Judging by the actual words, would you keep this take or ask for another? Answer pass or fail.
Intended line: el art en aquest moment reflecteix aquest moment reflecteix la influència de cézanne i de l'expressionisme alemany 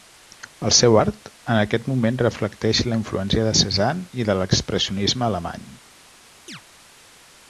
fail